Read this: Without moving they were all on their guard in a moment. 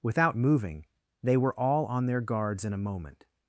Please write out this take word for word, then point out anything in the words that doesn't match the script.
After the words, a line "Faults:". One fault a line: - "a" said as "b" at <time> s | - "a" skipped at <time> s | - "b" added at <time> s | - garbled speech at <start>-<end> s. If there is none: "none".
Without moving they were all on their guards in a moment.
Faults:
- "guard" said as "guards" at 2.2 s